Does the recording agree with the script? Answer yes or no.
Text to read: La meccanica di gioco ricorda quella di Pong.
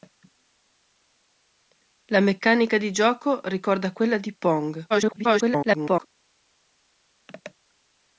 no